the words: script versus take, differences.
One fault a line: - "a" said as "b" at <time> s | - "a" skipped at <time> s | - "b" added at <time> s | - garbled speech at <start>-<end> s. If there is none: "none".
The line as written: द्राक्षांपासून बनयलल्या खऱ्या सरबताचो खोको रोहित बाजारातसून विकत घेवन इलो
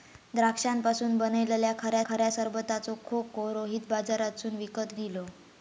- "खऱ्या" added at 2.1 s
- "घेवन" skipped at 4.9 s